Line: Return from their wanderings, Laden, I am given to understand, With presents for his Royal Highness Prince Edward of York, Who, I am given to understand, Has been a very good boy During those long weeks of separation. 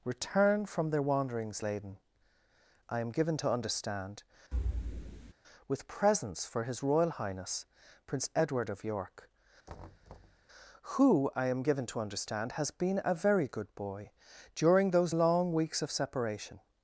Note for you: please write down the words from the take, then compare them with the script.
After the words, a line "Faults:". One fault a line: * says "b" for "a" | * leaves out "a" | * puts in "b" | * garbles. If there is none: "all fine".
Return from their wanderings, Laden, I am given to understand, With presents for his Royal Highness Prince Edward of York, Who, I am given to understand, Has been a very good boy During those long weeks of separation.
Faults:
all fine